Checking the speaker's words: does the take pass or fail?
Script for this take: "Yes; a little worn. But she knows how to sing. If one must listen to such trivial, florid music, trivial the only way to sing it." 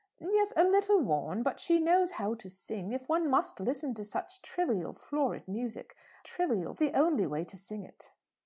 pass